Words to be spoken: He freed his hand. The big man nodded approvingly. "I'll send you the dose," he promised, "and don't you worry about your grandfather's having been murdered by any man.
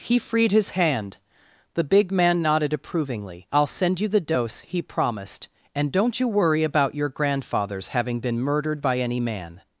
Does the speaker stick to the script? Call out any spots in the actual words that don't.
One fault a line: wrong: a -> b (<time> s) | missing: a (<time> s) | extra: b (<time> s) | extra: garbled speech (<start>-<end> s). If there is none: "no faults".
no faults